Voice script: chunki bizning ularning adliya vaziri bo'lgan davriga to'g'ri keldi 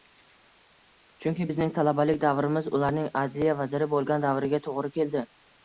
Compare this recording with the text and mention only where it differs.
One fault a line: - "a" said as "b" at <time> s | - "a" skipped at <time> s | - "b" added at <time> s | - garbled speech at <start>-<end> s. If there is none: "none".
- "talabalik davrimiz" added at 1.8 s